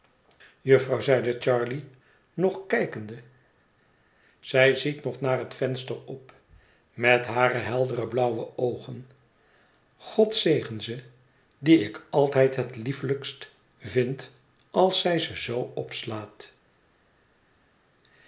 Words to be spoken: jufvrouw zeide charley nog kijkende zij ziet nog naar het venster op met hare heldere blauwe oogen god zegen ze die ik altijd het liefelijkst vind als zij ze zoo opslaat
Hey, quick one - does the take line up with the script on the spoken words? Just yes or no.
yes